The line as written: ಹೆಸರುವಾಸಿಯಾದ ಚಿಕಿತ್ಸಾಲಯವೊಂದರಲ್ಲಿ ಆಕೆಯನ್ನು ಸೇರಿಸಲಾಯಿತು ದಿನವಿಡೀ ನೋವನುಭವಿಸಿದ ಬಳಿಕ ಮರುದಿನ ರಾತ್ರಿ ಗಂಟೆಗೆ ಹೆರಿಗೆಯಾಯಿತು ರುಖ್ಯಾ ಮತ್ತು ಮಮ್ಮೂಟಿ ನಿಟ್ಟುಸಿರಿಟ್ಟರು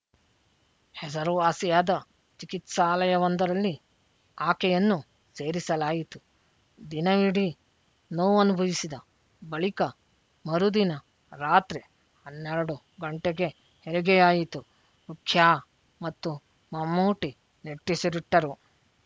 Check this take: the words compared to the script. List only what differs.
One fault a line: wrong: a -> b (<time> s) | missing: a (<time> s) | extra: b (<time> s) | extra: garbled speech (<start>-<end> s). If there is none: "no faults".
extra: ಹನ್ನೆರಡು (12.2 s)